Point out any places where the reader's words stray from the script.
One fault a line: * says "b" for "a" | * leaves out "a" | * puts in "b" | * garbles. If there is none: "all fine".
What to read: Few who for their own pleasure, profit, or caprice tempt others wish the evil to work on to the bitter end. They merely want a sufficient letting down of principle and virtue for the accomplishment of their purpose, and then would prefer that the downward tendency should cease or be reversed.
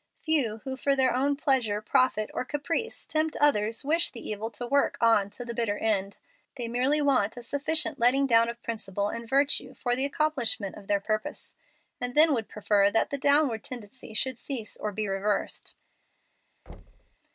all fine